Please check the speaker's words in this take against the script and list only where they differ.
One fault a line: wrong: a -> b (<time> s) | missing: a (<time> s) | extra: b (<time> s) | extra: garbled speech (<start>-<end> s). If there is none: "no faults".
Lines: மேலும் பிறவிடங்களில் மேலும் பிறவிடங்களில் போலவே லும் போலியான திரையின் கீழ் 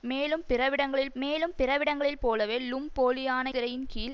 no faults